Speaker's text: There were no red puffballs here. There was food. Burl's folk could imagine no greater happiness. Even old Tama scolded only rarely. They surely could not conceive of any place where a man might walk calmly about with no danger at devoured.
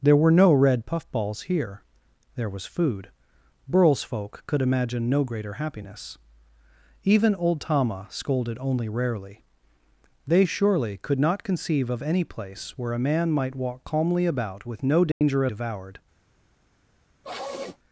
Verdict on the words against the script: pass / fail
pass